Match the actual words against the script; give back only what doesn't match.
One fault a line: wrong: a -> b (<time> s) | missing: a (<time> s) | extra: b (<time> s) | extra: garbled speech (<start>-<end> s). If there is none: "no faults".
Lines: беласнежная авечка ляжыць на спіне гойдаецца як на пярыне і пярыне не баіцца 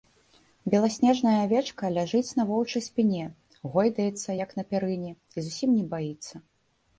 extra: воўчай (2.5 s)
wrong: пярыне -> зусім (5.5 s)